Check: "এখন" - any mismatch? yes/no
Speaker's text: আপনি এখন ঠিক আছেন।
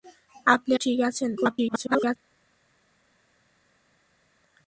yes